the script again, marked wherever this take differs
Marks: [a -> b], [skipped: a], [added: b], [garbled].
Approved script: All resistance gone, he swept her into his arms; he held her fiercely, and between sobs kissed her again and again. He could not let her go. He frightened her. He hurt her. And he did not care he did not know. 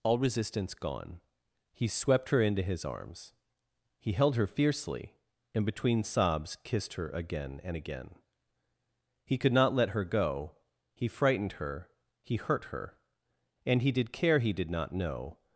All resistance gone, he swept her into his arms; he held her fiercely, and between sobs kissed her again and again. He could not let her go. He frightened her. He hurt her. And he did [skipped: not] care he did not know.